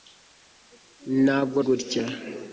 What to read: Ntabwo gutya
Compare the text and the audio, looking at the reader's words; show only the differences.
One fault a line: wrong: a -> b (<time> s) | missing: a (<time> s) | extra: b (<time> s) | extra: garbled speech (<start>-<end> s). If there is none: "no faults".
no faults